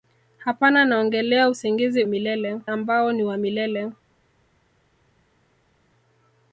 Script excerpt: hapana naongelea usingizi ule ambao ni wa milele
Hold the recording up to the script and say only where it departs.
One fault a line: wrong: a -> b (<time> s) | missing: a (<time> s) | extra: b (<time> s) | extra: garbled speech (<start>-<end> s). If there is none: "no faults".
wrong: ule -> milele (2.1 s)